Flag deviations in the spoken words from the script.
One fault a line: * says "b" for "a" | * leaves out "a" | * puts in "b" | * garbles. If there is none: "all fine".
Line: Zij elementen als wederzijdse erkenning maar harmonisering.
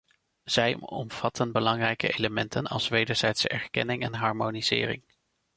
* puts in "omvatten belangrijke"
* says "en" for "maar"